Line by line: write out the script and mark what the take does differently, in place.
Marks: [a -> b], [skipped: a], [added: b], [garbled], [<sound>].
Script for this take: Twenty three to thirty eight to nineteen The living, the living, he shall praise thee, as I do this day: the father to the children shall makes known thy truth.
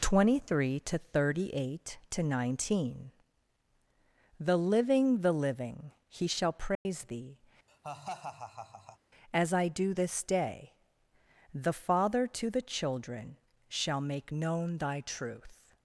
Twenty three to thirty eight to nineteen The living, the living, he shall praise [dropout] thee, [laugh] as I do this day: the father to the children shall [makes -> make] known thy truth.